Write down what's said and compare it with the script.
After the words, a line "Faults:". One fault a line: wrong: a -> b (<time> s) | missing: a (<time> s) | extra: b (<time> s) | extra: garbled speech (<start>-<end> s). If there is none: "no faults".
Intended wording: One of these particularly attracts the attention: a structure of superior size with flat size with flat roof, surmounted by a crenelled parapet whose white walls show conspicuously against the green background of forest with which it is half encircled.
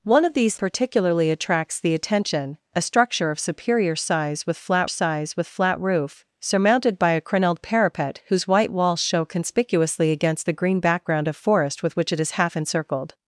One of these particularly attracts the attention: a structure of superior size with flat size with flat roof, surmounted by a crenelled parapet whose white walls show conspicuously against the green background of forest with which it is half encircled.
Faults:
no faults